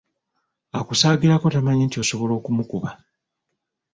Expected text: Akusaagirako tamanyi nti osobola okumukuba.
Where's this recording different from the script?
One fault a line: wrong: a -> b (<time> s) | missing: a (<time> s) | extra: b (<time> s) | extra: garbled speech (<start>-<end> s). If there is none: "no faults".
no faults